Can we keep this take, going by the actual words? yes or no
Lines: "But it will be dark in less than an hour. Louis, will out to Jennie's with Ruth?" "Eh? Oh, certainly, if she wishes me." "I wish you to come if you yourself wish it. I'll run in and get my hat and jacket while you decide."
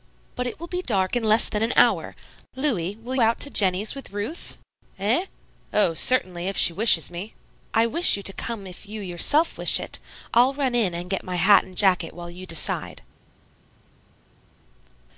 yes